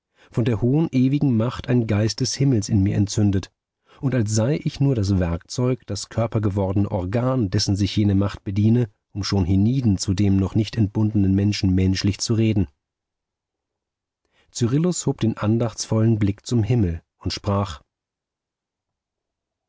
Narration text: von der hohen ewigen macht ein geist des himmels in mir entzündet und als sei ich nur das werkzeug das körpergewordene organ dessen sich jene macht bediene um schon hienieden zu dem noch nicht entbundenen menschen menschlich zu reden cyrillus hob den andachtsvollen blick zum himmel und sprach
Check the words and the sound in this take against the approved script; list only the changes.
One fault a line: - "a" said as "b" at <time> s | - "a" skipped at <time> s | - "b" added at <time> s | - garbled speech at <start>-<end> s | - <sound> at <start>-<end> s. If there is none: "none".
none